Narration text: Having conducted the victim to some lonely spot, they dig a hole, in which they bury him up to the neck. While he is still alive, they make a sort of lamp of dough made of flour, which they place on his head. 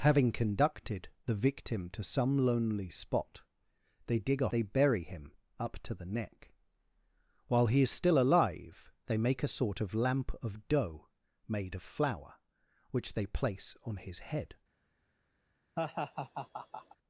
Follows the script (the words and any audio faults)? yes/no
no